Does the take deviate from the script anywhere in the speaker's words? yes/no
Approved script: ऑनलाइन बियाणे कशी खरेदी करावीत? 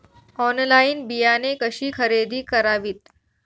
no